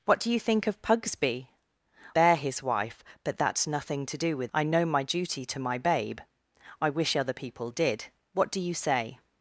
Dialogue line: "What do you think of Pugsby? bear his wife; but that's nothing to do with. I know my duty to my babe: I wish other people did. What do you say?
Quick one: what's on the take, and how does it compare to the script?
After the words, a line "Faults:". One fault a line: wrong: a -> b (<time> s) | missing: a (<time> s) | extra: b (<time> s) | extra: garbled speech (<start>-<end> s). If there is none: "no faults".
"What do you think of Pugsby? bear his wife; but that's nothing to do with. I know my duty to my babe: I wish other people did. What do you say?
Faults:
no faults